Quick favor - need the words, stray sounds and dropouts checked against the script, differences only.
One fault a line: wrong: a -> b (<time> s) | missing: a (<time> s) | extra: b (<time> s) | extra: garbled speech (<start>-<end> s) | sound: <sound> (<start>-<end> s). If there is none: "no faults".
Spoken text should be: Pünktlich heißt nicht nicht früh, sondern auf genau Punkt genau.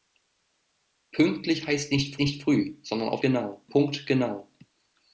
no faults